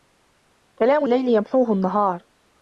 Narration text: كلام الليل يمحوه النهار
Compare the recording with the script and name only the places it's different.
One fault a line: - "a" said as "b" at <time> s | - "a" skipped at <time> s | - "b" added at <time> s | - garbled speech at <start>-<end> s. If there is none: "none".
none